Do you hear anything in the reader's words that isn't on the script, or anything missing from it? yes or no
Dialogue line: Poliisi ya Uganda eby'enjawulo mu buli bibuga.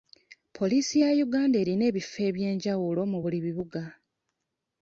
yes